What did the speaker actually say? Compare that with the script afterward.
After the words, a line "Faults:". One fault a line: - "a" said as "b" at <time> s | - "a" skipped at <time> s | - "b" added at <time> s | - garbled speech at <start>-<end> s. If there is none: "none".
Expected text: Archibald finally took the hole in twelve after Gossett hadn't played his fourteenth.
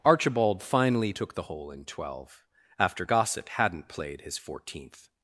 Archibald finally took the hole in twelve after Gossett hadn't played his fourteenth.
Faults:
none